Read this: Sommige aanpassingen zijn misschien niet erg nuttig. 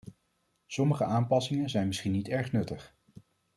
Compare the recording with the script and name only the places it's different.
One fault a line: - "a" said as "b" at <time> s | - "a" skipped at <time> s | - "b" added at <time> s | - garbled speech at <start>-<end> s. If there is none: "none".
none